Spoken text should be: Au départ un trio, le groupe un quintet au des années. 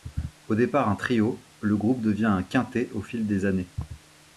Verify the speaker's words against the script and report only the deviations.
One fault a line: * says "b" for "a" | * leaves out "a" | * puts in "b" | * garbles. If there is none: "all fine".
* puts in "devient"
* puts in "fil"